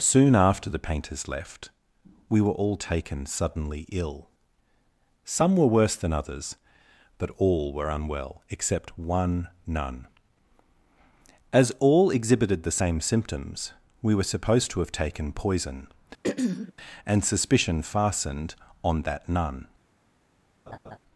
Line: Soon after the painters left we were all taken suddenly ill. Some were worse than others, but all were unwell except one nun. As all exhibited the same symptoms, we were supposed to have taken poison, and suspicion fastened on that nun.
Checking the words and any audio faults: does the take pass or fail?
fail